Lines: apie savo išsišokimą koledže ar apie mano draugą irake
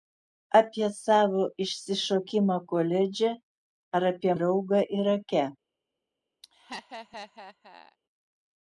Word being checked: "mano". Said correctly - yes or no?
no